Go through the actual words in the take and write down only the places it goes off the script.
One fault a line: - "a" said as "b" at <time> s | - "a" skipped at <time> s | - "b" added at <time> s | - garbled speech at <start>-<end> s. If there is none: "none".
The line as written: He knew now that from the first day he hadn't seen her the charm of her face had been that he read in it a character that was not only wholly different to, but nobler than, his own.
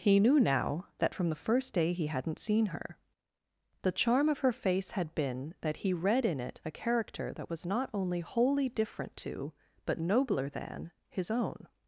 none